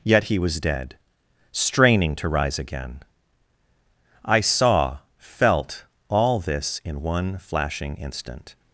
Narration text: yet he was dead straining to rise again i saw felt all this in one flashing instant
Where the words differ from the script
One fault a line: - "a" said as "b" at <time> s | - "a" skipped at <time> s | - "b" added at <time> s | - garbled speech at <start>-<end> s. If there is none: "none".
none